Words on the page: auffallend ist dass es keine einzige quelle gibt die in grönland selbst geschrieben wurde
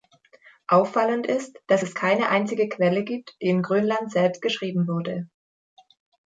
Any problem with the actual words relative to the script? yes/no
no